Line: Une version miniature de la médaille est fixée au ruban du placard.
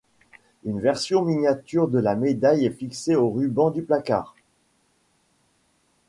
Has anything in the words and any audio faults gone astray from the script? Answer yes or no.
no